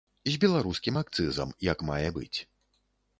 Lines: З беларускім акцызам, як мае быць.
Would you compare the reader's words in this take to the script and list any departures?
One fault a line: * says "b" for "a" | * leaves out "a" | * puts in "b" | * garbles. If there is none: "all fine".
all fine